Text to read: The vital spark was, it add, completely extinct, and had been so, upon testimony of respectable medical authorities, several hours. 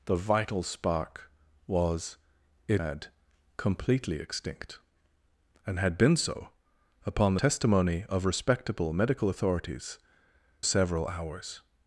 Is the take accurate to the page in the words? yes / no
yes